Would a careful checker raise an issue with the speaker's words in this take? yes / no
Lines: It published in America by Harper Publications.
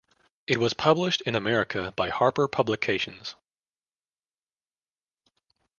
yes